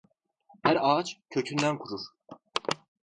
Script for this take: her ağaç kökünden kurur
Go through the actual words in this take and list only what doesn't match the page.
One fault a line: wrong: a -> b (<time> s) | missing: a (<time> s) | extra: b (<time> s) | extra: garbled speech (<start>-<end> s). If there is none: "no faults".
no faults